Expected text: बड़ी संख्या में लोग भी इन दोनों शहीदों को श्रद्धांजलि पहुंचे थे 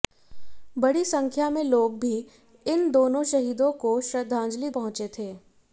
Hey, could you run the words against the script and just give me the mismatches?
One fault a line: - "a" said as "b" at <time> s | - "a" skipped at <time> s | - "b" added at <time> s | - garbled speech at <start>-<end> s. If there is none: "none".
none